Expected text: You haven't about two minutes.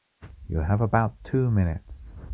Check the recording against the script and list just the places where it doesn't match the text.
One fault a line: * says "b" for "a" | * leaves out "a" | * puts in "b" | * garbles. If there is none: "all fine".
* says "have" for "haven't"